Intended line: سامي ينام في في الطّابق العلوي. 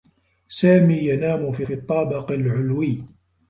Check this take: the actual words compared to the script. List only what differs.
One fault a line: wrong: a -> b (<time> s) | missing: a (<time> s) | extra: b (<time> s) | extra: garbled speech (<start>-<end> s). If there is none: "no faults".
no faults